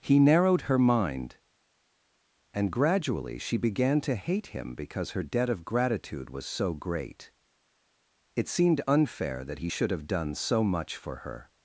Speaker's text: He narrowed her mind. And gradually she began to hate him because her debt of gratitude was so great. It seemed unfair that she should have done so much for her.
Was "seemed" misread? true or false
false